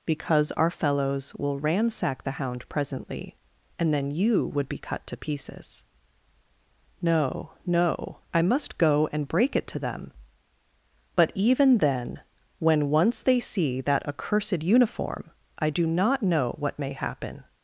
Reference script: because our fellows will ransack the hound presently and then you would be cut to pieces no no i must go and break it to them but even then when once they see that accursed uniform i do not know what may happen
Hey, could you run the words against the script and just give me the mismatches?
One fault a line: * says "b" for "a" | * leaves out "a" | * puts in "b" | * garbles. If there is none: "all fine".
all fine